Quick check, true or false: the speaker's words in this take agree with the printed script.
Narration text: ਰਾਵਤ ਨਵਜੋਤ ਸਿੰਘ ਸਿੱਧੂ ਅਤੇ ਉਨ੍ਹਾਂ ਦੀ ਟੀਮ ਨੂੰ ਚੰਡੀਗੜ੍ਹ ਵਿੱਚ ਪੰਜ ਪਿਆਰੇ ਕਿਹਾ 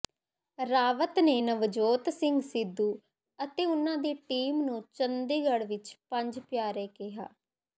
false